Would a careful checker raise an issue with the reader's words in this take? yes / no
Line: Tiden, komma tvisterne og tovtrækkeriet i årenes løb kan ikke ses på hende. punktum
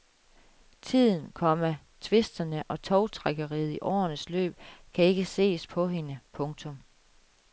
no